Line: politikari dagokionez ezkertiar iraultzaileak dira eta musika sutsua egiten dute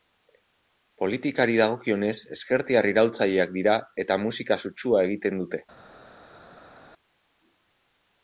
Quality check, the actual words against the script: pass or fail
pass